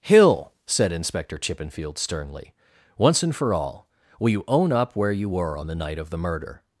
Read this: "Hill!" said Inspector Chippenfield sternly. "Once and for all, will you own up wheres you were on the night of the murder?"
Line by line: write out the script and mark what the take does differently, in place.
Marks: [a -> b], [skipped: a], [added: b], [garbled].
"Hill!" said Inspector Chippenfield sternly. "Once and for all, will you own up [wheres -> where] you were on the night of the murder?"